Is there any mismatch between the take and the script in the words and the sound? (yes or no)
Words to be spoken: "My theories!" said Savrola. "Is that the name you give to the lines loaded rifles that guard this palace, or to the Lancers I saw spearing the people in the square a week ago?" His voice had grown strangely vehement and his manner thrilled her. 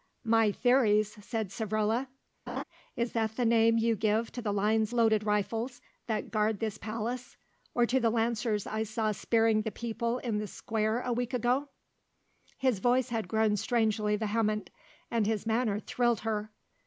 yes